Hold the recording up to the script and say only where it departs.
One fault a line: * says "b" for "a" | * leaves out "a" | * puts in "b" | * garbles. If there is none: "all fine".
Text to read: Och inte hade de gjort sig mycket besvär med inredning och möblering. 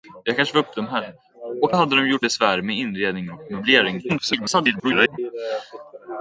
* leaves out "inte"
* leaves out "sig mycket"
* garbles